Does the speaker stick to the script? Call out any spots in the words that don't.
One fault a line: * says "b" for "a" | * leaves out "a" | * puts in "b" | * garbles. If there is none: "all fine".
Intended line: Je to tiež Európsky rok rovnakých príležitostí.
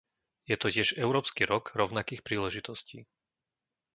all fine